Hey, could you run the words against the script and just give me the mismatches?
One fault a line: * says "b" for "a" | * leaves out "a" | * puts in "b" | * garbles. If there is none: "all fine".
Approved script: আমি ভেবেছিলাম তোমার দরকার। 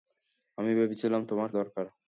all fine